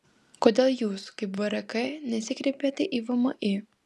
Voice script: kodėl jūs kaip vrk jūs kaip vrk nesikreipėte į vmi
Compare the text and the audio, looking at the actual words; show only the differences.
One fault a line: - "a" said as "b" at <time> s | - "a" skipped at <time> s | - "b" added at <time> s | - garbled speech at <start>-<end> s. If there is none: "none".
- "jūs kaip vrk" skipped at 1.7 s